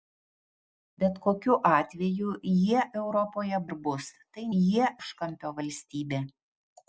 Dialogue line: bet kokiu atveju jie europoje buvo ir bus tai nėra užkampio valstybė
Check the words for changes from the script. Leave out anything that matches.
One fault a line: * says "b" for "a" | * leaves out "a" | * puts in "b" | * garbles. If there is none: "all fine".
* leaves out "buvo"
* says "jie" for "nėra"